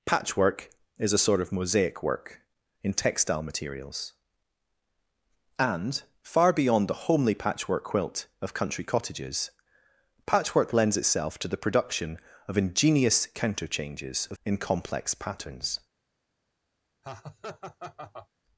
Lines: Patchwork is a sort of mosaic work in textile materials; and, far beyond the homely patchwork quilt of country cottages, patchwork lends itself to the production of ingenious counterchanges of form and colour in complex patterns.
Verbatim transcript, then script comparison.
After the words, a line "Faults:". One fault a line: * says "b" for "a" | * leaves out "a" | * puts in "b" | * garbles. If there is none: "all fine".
Patchwork is a sort of mosaic work in textile materials; and, far beyond the homely patchwork quilt of country cottages, patchwork lends itself to the production of ingenious counterchanges of in complex patterns.
Faults:
* leaves out "form and colour"